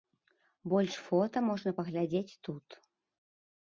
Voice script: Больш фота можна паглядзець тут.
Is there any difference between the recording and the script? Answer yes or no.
no